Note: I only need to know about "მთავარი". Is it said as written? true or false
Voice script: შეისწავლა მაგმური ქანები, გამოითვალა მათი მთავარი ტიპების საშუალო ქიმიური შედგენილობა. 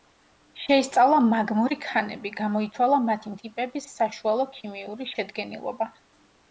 false